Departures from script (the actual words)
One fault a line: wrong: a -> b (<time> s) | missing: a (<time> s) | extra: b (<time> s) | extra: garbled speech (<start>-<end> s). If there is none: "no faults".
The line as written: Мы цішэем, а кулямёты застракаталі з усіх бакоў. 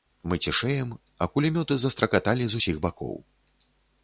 no faults